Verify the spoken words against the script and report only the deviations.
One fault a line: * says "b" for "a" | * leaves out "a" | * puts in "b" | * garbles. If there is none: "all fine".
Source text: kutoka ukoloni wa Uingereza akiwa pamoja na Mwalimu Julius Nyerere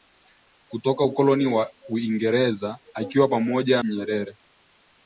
* leaves out "na Mwalimu Julius"